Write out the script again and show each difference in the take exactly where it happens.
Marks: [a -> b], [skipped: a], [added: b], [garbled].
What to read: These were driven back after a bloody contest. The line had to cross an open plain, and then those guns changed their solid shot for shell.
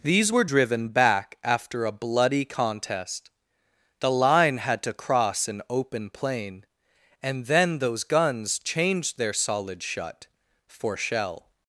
These were driven back after a bloody contest. The line had to cross an open plain, and then those guns changed their solid [shot -> shut] for shell.